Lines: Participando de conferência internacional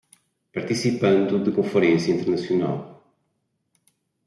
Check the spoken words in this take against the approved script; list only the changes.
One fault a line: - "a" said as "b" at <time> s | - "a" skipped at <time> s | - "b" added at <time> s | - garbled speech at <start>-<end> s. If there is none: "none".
none